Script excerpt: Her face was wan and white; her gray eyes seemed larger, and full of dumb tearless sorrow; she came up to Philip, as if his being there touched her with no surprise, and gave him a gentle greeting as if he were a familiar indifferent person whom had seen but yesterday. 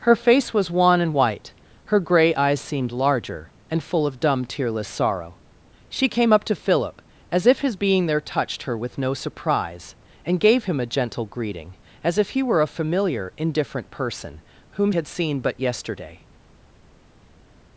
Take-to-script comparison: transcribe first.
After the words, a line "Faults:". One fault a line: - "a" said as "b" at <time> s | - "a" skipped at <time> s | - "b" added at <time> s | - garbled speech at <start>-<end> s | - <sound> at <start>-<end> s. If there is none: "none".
Her face was wan and white; her gray eyes seemed larger, and full of dumb tearless sorrow; she came up to Philip, as if his being there touched her with no surprise, and gave him a gentle greeting as if he were a familiar indifferent person whom had seen but yesterday.
Faults:
none